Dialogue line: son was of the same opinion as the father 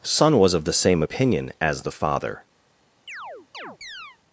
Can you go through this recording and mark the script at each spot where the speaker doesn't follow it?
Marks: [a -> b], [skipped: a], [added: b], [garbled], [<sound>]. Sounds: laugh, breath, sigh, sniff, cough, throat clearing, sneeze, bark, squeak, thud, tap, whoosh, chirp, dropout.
son was of the same opinion as the father [chirp]